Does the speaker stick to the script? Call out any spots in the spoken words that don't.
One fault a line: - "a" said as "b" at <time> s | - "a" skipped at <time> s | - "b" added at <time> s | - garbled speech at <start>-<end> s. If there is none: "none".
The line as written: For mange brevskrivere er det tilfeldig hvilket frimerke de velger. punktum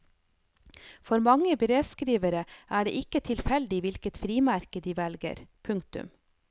- "ikke" added at 3.0 s